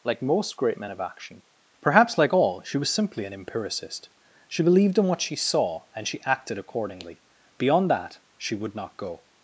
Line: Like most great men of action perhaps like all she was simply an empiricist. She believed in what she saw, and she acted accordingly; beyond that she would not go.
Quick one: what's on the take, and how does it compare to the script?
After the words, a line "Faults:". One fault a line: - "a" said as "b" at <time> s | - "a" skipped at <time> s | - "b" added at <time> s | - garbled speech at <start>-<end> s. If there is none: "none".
Like most great men of action perhaps like all she was simply an empiricist. She believed in what she saw, and she acted accordingly; beyond that she would not go.
Faults:
none